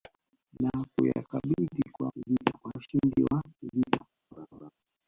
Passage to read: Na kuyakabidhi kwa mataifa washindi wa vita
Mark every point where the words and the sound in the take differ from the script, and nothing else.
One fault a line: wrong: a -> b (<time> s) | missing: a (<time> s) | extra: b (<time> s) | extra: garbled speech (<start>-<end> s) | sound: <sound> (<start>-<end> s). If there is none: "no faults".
wrong: mataifa -> vita (2.1 s)
sound: laugh (4.3-4.7 s)